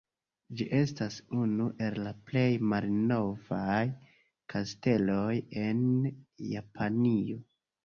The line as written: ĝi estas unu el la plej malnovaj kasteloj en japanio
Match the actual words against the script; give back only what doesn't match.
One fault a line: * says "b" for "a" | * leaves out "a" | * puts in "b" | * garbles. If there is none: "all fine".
all fine